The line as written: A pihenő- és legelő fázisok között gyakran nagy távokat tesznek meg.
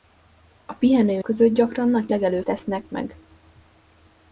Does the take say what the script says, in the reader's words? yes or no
no